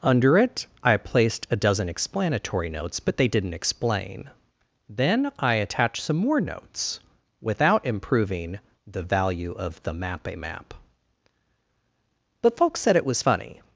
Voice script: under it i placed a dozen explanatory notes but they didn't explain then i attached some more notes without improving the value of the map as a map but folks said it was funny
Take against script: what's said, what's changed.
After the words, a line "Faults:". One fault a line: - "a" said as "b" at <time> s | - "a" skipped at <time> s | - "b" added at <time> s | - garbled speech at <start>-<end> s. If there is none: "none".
under it i placed a dozen explanatory notes but they didn't explain then i attached some more notes without improving the value of the map a map but folks said it was funny
Faults:
- "as" skipped at 10.3 s